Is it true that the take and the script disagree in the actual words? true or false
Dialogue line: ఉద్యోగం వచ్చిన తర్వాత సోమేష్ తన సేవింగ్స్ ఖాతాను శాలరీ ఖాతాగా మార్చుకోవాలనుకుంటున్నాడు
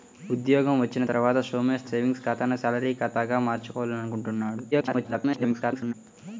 true